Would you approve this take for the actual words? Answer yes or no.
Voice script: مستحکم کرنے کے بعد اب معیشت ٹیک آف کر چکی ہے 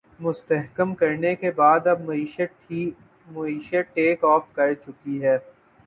yes